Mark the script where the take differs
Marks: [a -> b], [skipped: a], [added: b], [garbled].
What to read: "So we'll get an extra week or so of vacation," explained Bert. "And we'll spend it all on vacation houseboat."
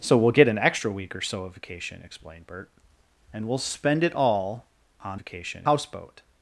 "So we'll get an extra week or so of vacation," explained Bert. "And we'll spend it all on vacation houseboat."